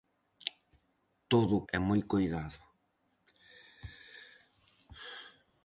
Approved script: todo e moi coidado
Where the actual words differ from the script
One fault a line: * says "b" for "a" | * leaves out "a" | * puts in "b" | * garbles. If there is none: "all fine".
all fine